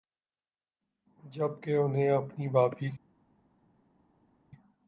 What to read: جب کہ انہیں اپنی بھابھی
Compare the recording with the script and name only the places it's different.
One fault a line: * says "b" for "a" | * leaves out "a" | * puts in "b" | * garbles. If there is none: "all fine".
all fine